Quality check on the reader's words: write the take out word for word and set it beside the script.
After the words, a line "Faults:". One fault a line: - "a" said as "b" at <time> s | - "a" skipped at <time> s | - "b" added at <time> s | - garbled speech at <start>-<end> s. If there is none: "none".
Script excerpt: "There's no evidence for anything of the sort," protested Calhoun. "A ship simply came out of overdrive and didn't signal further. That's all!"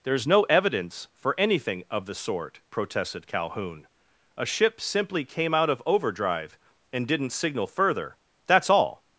"There's no evidence for anything of the sort," protested Calhoun. "A ship simply came out of overdrive and didn't signal further. That's all!"
Faults:
none